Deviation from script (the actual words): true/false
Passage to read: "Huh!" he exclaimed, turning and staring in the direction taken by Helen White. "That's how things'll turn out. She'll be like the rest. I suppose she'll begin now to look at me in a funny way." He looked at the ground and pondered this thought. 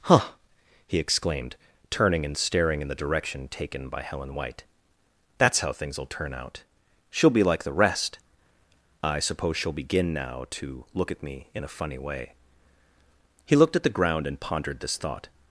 false